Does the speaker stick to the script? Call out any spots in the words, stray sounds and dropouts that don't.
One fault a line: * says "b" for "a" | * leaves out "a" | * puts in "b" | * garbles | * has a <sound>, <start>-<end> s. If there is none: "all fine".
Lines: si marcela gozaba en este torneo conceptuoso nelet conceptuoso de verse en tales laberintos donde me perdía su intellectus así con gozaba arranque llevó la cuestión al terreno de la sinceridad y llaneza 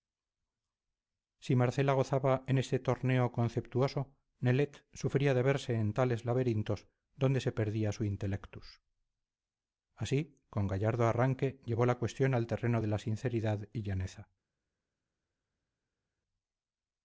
* says "sufría" for "conceptuoso"
* says "se" for "me"
* says "gallardo" for "gozaba"